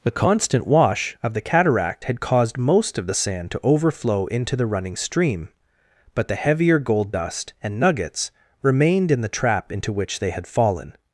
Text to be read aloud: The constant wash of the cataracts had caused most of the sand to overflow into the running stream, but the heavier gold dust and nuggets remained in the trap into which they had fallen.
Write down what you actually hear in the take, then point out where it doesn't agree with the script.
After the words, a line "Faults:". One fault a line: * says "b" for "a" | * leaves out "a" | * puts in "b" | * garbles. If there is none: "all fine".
The constant wash of the cataract had caused most of the sand to overflow into the running stream, but the heavier gold dust and nuggets remained in the trap into which they had fallen.
Faults:
* says "cataract" for "cataracts"